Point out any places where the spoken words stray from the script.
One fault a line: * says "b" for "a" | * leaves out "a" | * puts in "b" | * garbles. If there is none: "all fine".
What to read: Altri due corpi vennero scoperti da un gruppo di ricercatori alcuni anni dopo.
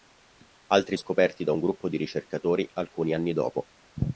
* leaves out "due corpi vennero"